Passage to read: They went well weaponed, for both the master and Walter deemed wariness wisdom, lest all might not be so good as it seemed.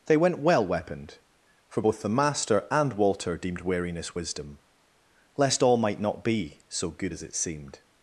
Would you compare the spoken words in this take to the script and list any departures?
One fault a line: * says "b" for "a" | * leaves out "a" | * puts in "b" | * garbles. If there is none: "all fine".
all fine